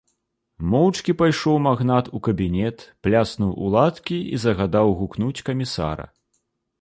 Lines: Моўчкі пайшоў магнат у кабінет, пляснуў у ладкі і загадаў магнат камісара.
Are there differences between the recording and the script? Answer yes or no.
yes